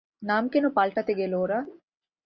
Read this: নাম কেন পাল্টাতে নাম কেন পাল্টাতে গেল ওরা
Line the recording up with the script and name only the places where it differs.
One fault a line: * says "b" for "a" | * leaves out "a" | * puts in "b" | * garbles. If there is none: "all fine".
* leaves out "নাম কেন পাল্টাতে"